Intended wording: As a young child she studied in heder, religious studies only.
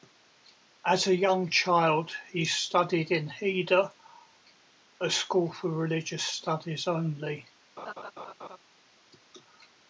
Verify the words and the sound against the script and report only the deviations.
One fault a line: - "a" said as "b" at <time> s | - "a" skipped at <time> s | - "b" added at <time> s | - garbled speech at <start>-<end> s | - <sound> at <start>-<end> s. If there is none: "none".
- "she" said as "he" at 2.3 s
- "a school for" added at 5.0 s
- laugh at 7.8-8.6 s